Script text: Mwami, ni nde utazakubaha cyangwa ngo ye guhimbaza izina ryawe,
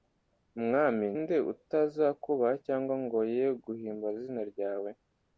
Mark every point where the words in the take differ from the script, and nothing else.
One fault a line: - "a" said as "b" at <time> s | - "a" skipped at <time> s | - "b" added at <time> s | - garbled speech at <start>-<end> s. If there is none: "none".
- "ni" skipped at 1.1 s